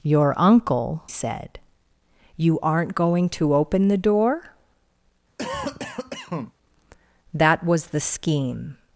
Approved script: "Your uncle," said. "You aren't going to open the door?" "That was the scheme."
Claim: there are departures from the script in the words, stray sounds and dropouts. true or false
true